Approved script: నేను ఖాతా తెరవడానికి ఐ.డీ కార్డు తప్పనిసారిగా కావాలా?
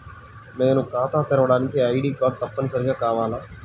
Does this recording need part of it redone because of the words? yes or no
no